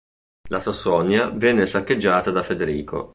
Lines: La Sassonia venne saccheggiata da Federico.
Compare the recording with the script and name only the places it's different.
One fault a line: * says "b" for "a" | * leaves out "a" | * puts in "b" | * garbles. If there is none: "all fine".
all fine